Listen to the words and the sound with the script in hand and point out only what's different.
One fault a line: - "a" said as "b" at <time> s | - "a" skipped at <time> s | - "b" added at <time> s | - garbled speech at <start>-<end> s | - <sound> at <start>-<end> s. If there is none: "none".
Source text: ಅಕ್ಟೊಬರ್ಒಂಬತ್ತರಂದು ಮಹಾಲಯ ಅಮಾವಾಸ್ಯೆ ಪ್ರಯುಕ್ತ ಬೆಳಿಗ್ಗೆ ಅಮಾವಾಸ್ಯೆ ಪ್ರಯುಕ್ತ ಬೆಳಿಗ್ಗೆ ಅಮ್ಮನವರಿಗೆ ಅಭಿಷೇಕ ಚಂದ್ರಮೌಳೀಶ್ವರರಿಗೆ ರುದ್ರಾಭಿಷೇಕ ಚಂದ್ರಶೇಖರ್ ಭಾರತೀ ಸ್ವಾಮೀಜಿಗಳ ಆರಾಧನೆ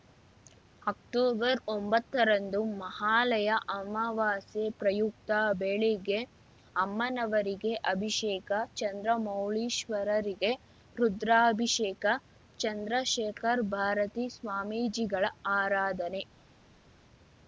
- "ಅಮಾವಾಸ್ಯೆ ಪ್ರಯುಕ್ತ ಬೆಳಿಗ್ಗೆ" skipped at 6.2 s